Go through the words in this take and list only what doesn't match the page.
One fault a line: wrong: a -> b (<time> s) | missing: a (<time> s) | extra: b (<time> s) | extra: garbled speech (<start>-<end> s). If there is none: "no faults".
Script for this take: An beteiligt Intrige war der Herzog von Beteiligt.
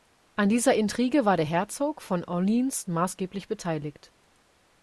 wrong: beteiligt -> dieser (0.5 s)
extra: Orleans maßgeblich (2.2 s)